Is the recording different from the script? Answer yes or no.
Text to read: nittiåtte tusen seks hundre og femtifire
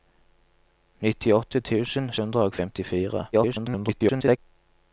yes